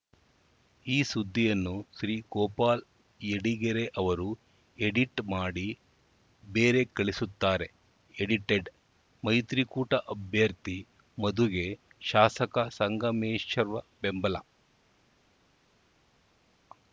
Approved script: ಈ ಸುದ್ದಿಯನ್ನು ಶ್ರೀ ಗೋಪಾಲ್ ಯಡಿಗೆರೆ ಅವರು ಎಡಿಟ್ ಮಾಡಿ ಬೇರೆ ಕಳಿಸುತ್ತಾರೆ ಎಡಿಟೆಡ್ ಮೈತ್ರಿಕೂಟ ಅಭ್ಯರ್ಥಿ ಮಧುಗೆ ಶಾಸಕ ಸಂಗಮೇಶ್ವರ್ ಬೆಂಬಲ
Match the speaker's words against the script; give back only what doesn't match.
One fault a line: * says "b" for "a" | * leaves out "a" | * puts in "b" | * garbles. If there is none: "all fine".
all fine